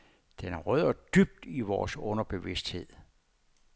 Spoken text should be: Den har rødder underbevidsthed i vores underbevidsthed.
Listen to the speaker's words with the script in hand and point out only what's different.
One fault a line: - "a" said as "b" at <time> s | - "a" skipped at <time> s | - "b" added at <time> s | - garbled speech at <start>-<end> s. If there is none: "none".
- "underbevidsthed" said as "dybt" at 0.9 s